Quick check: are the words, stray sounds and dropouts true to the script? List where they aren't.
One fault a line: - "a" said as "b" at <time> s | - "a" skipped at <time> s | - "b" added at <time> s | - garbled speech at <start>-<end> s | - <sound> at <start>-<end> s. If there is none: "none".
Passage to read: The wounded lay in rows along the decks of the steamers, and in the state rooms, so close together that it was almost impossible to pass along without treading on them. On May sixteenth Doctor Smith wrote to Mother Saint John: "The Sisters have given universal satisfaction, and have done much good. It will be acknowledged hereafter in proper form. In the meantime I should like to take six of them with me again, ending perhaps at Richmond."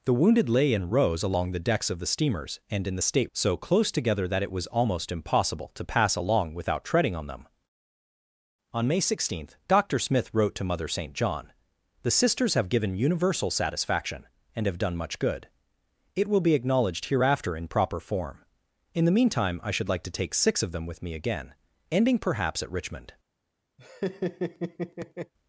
- "rooms" skipped at 3.3 s
- laugh at 23.8-25.3 s